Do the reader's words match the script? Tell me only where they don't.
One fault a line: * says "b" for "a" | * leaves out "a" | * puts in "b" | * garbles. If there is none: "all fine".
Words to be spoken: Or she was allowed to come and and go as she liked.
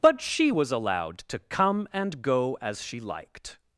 * says "But" for "Or"
* leaves out "and"